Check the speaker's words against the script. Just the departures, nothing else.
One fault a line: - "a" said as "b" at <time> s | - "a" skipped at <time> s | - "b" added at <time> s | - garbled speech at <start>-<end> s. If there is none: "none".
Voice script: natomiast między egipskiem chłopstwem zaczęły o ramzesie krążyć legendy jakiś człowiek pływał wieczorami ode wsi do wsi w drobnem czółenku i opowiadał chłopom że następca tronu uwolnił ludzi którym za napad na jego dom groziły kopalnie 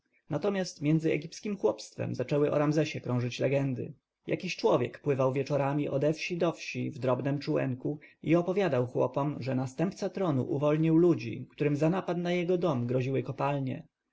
none